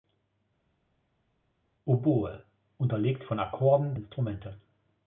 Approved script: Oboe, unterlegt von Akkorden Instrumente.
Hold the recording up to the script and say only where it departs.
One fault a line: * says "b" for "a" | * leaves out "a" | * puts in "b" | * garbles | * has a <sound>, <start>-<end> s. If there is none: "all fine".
all fine